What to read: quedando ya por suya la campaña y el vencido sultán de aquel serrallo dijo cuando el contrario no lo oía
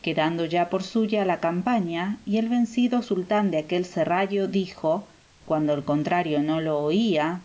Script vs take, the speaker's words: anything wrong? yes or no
no